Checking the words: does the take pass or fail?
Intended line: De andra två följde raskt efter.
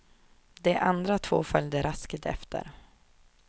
pass